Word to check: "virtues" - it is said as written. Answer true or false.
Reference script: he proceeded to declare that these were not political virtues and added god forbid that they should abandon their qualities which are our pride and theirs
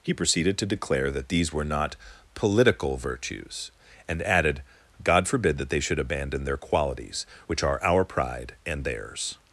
true